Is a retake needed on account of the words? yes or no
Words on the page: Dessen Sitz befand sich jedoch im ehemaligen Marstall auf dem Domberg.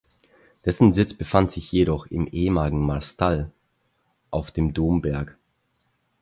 no